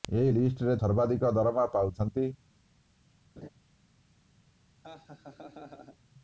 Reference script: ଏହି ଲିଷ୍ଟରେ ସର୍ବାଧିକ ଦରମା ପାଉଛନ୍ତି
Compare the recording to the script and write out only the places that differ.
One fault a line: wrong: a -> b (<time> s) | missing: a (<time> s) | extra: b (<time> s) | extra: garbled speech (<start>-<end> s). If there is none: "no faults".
no faults